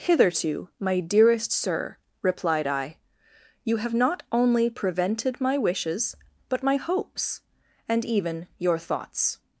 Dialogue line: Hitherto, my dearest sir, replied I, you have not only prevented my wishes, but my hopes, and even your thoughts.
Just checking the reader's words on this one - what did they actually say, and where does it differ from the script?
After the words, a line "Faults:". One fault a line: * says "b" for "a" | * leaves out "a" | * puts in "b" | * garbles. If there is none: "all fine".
Hitherto, my dearest sir, replied I, you have not only prevented my wishes, but my hopes, and even your thoughts.
Faults:
all fine